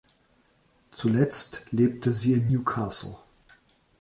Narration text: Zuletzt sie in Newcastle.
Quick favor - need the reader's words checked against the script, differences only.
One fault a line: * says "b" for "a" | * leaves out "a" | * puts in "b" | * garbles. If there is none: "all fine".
* puts in "lebte"